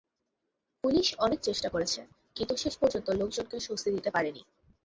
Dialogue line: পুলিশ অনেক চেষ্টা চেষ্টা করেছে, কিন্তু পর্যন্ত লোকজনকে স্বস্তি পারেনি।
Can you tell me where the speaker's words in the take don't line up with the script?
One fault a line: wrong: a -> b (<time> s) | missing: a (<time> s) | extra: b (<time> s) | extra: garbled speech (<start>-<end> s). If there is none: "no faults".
missing: চেষ্টা (1.7 s)
extra: শেষ (2.5 s)
extra: দিতে (4.0 s)